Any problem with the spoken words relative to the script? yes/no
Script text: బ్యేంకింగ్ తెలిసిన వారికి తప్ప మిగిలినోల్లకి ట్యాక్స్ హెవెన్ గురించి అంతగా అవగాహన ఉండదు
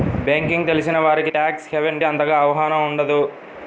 yes